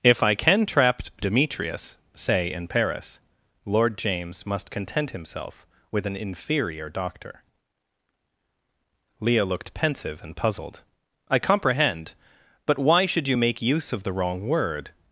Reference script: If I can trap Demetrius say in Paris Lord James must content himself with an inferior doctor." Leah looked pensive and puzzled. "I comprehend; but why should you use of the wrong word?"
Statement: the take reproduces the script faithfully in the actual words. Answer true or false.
false